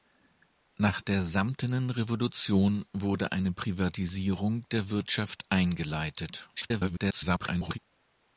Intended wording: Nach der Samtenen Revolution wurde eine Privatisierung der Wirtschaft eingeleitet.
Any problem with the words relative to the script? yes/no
yes